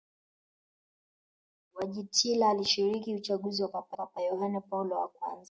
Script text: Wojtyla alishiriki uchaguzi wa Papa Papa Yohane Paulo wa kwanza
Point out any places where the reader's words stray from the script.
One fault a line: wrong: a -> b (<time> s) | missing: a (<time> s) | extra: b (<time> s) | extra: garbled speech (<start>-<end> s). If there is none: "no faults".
no faults